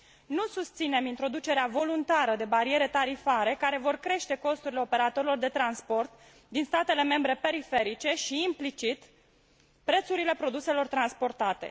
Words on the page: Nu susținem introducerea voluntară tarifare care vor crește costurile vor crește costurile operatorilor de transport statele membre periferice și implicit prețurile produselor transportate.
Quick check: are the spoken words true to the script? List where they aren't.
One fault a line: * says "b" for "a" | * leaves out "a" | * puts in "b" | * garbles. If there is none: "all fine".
* puts in "de bariere"
* leaves out "vor crește costurile"
* puts in "din"